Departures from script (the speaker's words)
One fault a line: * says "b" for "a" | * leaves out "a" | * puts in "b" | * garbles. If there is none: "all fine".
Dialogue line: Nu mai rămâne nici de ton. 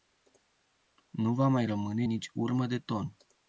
* puts in "va"
* puts in "urmă"